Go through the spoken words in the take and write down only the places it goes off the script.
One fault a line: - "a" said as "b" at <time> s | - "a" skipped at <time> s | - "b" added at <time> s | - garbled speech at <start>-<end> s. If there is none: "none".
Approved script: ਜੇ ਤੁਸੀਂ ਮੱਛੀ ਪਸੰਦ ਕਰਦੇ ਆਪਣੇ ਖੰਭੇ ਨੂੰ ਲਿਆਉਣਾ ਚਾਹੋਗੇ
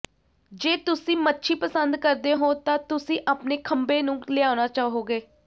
- "ਹੋ ਤਾਂ ਤੁਸੀਂ" added at 2.3 s